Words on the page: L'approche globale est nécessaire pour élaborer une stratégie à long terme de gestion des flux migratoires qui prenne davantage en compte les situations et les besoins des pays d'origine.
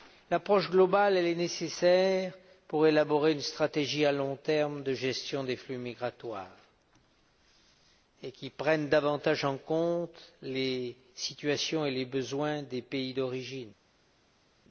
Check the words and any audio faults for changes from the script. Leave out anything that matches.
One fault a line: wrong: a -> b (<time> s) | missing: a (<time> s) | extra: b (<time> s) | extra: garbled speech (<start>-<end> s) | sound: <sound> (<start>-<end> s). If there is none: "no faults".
no faults